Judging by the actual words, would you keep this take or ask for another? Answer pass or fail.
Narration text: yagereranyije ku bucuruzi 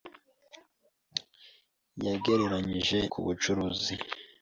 pass